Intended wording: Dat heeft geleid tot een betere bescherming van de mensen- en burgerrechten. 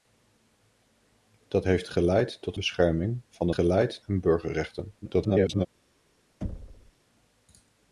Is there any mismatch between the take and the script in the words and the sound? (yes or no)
yes